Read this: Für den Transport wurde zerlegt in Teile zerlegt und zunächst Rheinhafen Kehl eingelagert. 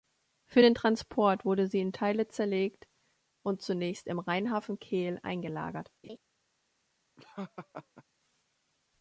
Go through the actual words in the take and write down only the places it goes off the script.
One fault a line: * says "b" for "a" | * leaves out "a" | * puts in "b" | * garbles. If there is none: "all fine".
* says "sie" for "zerlegt"
* puts in "im"